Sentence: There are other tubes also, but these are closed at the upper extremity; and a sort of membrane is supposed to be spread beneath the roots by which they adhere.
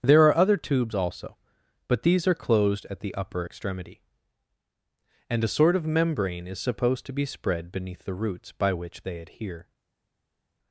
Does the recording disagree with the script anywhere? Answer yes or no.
no